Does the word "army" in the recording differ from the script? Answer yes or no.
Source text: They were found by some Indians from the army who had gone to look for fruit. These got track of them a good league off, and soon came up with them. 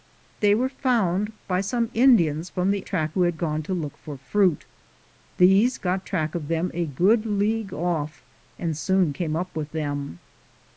yes